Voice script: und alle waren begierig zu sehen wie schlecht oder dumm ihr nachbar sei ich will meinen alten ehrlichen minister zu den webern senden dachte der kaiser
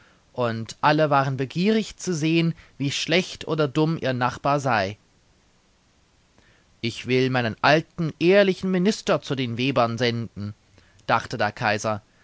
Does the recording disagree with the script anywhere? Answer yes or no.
no